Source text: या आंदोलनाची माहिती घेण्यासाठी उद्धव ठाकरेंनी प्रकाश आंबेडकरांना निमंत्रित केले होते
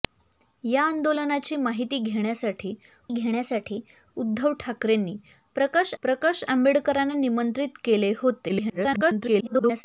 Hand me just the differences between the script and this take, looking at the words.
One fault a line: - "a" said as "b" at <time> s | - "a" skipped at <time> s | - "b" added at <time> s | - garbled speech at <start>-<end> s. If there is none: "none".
- "घेण्यासाठी" added at 3.1 s
- "प्रकाश" added at 6.0 s
- garbled speech at 8.5-9.8 s